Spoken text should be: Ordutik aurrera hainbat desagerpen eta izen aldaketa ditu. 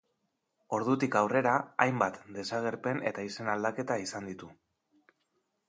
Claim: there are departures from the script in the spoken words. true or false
true